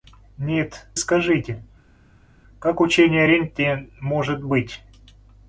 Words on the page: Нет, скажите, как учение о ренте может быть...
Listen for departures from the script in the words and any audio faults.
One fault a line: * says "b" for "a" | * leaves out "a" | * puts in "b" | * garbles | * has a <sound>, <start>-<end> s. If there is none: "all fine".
all fine